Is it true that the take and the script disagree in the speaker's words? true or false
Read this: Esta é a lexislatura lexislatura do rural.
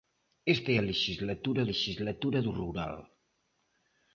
false